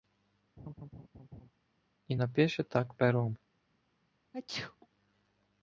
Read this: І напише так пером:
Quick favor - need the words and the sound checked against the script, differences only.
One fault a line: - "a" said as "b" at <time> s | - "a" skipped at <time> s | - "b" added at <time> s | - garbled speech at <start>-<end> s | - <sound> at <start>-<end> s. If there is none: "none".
- laugh at 0.6-1.5 s
- sneeze at 4.3-4.9 s